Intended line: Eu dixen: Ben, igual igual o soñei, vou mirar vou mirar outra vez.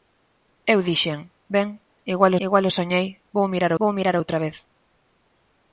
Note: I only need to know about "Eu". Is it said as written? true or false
true